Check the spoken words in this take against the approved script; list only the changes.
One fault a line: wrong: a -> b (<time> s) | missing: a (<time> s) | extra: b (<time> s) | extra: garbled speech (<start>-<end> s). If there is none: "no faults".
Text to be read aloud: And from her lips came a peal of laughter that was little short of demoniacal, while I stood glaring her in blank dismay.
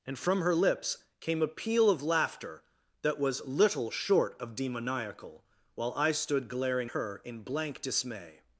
no faults